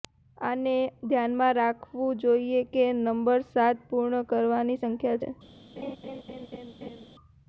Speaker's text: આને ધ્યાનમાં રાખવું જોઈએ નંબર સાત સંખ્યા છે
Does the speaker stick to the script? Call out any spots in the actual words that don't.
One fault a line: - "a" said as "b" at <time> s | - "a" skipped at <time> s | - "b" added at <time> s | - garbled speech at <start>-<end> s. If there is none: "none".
- "કે" added at 2.7 s
- "પૂર્ણ કરવાની" added at 3.9 s